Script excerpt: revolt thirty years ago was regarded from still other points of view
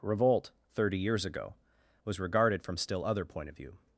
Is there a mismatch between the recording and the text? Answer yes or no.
yes